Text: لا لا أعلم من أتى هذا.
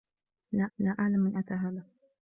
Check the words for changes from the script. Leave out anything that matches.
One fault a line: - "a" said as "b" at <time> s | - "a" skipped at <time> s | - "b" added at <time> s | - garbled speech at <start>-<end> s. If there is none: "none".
none